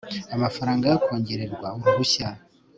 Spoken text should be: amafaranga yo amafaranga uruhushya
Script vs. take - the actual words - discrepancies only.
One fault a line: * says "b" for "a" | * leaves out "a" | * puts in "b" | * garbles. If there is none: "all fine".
* says "kongererwa" for "amafaranga"